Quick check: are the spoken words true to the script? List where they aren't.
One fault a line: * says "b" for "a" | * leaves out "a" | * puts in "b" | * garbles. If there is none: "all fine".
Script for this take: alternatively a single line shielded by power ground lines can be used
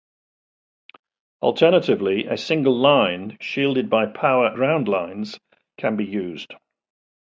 all fine